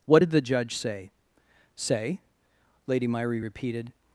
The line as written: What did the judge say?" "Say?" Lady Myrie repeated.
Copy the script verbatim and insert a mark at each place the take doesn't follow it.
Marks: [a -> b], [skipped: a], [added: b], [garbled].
What did the judge say?" "Say?" Lady Myrie repeated.